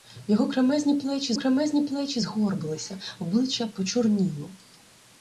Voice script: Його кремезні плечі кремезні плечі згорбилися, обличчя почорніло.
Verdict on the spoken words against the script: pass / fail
pass